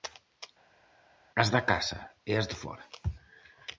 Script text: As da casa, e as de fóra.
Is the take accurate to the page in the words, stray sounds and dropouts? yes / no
yes